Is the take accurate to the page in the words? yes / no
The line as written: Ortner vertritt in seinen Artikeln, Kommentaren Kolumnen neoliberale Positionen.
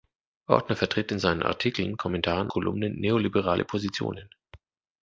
yes